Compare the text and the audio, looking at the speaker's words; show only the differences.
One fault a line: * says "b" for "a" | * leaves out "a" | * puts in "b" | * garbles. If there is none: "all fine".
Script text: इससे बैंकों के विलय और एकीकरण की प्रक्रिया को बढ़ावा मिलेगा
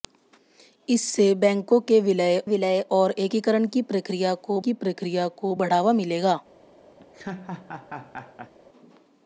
* puts in "विलय"
* puts in "की प्रक्रिया को"